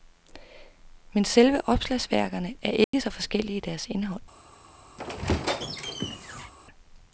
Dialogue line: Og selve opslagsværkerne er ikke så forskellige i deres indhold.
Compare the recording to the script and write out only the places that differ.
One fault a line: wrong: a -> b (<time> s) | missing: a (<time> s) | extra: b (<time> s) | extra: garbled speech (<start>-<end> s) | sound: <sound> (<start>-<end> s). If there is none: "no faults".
wrong: Og -> Men (1.1 s)
sound: dropout (2.8-2.9 s)
sound: squeak (5.0-6.5 s)